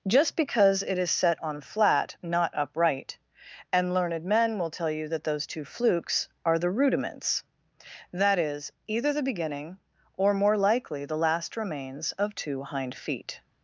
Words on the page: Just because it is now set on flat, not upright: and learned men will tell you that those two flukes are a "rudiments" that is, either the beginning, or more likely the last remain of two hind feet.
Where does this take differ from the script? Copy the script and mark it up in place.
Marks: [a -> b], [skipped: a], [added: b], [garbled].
Just because it is [skipped: now] set on flat, not upright: and learned men will tell you that those two flukes are [a -> the] "rudiments" that is, either the beginning, or more likely the last [remain -> remains] of two hind feet.